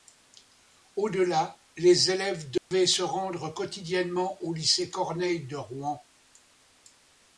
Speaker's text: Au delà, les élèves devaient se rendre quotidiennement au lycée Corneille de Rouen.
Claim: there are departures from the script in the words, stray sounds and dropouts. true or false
true